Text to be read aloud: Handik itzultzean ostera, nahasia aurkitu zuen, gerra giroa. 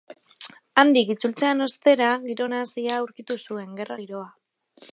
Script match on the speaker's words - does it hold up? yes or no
no